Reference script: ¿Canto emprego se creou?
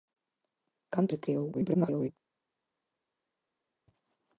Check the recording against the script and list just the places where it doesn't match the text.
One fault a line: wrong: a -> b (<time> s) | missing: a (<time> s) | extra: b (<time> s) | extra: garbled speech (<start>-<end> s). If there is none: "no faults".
missing: emprego (1.1 s)
extra: garbled speech (1.5-2.1 s)